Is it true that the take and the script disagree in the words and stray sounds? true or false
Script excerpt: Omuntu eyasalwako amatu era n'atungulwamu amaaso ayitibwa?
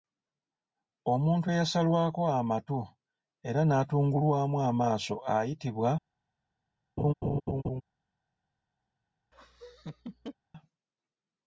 true